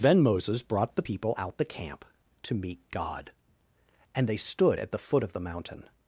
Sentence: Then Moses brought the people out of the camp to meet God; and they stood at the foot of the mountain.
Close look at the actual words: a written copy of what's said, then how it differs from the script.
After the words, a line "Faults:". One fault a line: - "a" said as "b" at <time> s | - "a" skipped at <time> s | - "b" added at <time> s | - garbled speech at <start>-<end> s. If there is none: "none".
Then Moses brought the people out the camp to meet God; and they stood at the foot of the mountain.
Faults:
- "of" skipped at 1.6 s